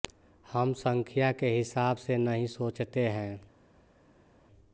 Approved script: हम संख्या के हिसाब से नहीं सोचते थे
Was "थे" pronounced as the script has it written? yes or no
no